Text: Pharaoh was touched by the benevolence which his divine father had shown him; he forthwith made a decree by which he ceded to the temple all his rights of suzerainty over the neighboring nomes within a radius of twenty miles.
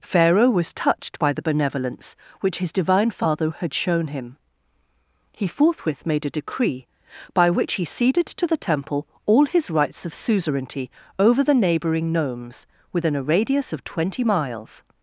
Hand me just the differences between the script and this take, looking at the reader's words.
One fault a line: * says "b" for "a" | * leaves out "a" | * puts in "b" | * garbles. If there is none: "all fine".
all fine